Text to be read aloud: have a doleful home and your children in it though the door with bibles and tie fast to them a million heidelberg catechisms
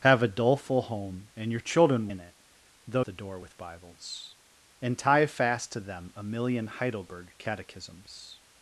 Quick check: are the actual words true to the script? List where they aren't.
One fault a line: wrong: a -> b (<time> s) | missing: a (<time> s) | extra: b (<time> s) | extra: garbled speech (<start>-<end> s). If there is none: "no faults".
no faults